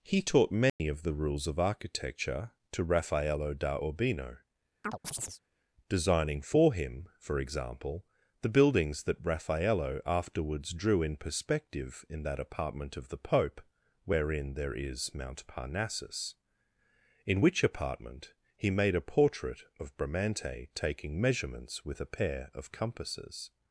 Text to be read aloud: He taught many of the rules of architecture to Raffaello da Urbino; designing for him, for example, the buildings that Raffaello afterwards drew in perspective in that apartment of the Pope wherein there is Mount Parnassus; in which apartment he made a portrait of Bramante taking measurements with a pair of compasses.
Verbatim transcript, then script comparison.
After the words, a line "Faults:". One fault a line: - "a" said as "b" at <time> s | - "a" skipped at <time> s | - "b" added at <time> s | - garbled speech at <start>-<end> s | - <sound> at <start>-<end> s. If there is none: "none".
He taught many of the rules of architecture to Raffaello da Urbino; designing for him, for example, the buildings that Raffaello afterwards drew in perspective in that apartment of the Pope wherein there is Mount Parnassus; in which apartment he made a portrait of Bramante taking measurements with a pair of compasses.
Faults:
- dropout at 0.7-0.8 s
- chirp at 4.8-5.4 s